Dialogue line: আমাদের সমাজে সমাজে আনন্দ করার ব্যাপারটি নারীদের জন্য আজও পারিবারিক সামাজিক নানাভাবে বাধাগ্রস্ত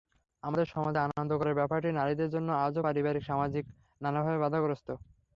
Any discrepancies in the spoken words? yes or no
yes